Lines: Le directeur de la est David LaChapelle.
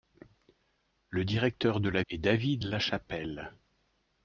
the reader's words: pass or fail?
pass